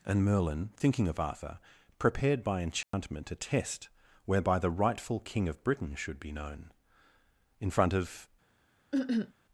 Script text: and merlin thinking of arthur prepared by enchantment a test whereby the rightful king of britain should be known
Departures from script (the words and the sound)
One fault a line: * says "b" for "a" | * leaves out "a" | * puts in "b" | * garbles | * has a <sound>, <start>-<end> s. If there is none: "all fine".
* has a dropout, 2.8-2.9 s
* puts in "in front of"
* has a cough, 8.9-9.3 s